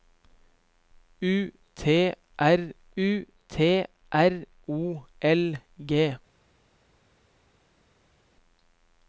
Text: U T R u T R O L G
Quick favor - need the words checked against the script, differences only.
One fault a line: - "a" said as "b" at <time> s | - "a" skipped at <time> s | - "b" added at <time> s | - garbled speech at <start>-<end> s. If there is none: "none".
none